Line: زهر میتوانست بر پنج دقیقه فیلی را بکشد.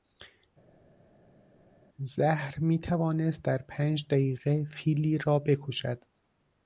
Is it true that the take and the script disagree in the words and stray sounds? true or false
true